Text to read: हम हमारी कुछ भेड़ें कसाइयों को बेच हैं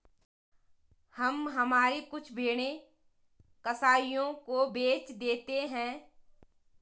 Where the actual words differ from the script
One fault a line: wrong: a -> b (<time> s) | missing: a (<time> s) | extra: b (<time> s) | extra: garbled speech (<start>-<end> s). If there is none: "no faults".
extra: देते (5.1 s)